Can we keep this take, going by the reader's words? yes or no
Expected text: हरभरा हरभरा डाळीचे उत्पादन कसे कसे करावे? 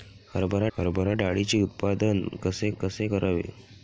yes